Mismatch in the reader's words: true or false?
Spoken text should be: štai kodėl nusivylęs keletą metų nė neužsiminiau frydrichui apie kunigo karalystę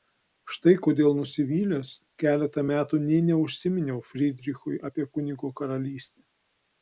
false